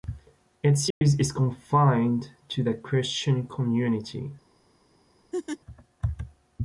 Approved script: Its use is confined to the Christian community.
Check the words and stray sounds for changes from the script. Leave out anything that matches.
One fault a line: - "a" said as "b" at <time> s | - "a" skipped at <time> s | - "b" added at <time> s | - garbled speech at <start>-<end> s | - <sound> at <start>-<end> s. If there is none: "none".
- dropout at 0.9-1.0 s
- laugh at 5.3-5.6 s